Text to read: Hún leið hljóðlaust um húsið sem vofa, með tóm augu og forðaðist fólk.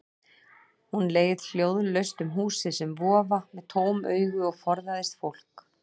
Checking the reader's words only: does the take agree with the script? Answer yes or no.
yes